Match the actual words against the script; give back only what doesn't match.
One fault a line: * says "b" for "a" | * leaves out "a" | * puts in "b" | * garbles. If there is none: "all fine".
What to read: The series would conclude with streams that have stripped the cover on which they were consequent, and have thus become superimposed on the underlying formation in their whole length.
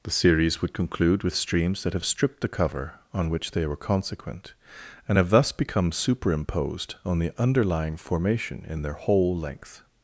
all fine